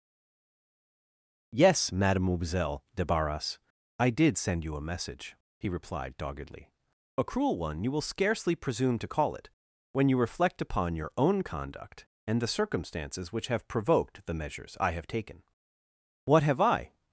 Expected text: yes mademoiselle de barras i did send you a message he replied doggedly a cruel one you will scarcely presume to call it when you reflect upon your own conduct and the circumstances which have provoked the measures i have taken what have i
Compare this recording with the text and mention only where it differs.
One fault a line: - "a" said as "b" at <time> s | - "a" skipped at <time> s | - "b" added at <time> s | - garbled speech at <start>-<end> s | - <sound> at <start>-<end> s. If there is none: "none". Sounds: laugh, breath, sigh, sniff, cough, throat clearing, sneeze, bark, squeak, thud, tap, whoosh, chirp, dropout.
none